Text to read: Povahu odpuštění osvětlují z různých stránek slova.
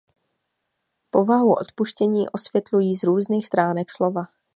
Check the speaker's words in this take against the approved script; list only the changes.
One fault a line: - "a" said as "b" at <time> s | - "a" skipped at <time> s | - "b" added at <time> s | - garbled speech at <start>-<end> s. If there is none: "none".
none